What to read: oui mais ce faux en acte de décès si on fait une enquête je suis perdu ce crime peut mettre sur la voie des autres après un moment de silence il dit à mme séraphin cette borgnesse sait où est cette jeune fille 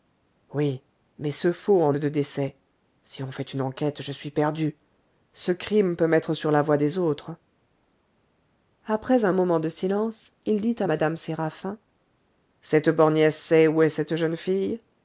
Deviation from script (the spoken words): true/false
true